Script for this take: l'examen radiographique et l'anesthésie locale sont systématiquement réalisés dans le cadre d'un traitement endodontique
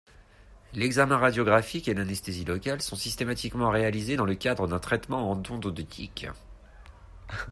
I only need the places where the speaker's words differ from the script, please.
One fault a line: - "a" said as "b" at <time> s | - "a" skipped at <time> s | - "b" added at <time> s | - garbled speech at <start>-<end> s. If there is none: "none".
none